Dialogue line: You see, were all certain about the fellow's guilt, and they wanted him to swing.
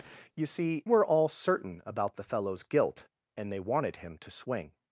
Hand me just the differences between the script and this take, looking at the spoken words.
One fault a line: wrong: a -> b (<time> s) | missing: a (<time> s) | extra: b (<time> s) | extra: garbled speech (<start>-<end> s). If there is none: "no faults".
no faults